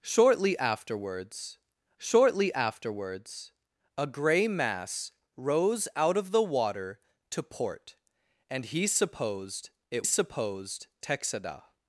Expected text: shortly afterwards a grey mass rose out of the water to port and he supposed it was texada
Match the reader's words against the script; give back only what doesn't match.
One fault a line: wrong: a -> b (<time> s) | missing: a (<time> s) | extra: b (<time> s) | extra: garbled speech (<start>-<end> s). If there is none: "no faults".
extra: shortly afterwards (2.0 s)
wrong: was -> supposed (10.0 s)